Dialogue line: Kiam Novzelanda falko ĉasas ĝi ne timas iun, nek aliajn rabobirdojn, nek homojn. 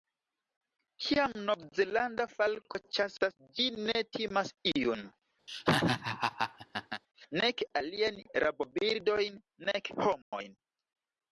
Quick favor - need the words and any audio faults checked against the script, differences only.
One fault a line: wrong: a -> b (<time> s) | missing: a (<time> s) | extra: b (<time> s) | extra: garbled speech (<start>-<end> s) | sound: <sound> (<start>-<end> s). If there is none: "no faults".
sound: laugh (5.5-7.0 s)
sound: dropout (10.2-10.3 s)